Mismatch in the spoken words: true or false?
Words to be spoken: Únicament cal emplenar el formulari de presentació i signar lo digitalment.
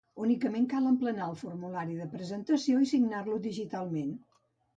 false